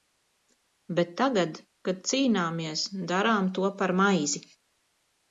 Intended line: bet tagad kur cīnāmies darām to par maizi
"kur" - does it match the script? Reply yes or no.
no